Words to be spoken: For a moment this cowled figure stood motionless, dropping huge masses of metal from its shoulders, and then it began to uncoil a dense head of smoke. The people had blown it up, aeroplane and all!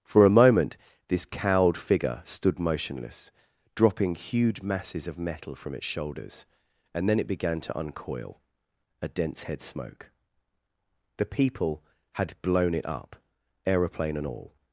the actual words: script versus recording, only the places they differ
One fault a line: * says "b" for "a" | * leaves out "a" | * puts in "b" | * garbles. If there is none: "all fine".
* leaves out "of"